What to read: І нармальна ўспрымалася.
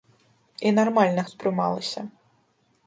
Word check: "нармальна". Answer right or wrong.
right